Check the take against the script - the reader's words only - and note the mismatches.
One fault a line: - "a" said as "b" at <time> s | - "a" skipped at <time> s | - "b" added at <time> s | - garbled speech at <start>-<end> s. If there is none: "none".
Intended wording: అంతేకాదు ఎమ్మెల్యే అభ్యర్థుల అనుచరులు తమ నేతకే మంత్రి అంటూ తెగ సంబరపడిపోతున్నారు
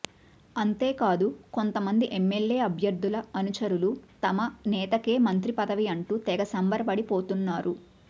- "కొంతమంది" added at 1.5 s
- "పదవి" added at 5.6 s